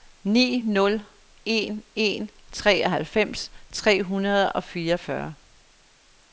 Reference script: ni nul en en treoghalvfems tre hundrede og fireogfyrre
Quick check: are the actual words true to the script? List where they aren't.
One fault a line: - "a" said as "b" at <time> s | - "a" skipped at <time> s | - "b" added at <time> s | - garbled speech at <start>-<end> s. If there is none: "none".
none